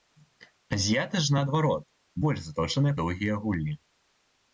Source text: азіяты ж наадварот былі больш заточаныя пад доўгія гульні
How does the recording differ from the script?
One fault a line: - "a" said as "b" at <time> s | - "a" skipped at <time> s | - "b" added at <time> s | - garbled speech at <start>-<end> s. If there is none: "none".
- "былі" skipped at 1.8 s
- "пад" skipped at 3.0 s